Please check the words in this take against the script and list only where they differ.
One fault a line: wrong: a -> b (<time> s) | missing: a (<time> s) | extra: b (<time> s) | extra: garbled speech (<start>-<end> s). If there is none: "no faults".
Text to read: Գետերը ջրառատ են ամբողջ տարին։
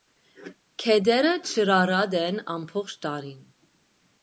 no faults